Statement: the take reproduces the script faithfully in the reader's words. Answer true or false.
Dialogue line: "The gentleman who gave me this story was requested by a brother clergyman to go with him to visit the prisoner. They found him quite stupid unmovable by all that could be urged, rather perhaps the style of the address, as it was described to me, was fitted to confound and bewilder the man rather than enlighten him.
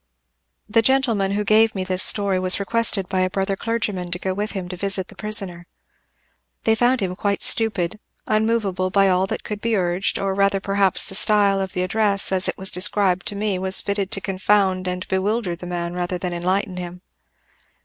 false